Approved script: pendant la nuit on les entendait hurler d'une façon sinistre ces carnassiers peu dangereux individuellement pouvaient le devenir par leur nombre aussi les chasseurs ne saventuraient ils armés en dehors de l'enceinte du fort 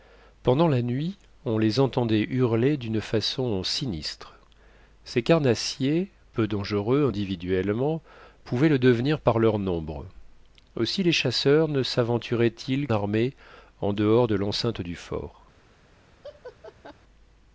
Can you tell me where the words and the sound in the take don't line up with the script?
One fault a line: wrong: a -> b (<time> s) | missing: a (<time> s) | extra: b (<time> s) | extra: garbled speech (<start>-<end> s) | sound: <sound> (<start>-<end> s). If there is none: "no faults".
sound: laugh (16.2-16.9 s)